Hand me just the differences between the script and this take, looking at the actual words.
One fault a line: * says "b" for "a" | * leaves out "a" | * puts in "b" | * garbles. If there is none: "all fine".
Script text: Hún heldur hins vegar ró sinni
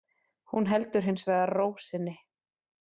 all fine